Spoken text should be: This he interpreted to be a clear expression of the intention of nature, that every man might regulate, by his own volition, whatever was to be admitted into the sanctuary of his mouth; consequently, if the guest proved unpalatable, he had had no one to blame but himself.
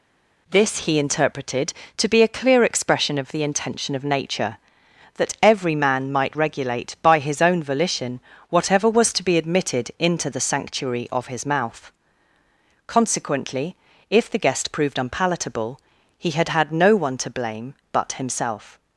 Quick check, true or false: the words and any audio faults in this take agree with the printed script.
true